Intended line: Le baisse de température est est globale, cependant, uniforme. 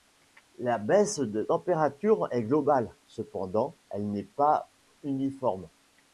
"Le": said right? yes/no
no